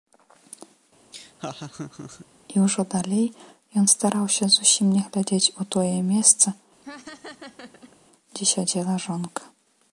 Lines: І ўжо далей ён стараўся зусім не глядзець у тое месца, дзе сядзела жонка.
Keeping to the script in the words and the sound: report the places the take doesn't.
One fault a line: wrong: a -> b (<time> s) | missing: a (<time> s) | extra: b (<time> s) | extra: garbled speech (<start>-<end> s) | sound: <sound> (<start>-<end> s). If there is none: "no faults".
sound: laugh (1.1-2.3 s)
sound: laugh (6.8-8.0 s)